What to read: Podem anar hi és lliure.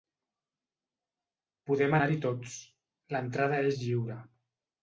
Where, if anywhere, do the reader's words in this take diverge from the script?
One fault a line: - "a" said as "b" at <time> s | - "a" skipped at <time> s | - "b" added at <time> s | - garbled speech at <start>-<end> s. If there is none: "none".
- "tots l'entrada" added at 2.3 s